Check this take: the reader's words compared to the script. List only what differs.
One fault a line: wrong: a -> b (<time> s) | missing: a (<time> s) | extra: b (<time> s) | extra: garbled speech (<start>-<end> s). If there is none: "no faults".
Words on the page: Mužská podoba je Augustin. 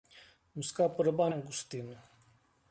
no faults